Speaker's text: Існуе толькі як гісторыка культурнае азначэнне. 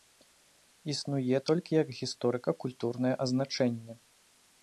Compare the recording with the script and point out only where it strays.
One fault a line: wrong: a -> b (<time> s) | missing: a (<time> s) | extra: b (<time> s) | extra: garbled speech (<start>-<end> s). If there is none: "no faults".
no faults